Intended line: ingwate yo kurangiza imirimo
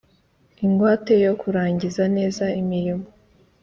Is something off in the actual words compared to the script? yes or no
yes